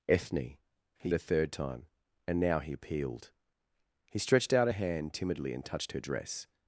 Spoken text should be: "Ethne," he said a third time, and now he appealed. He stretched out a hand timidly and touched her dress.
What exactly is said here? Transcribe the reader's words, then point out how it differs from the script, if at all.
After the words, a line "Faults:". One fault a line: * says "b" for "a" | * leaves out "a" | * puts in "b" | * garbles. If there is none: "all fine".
"Ethne," he a third time, and now he appealed. He stretched out a hand timidly and touched her dress.
Faults:
* leaves out "said"